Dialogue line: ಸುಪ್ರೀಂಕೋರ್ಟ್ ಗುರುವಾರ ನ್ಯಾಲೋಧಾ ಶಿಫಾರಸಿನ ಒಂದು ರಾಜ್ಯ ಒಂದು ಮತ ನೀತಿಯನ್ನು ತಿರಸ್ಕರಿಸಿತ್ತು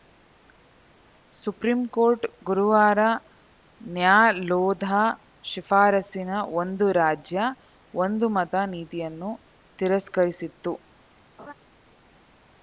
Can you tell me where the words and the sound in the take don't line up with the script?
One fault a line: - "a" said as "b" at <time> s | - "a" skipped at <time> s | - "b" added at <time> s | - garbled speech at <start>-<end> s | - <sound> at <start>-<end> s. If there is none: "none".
- laugh at 11.4-11.5 s